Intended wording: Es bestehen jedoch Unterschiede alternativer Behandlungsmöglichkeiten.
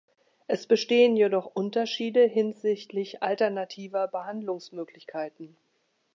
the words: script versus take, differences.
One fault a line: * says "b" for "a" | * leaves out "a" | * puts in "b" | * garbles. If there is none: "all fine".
* puts in "hinsichtlich"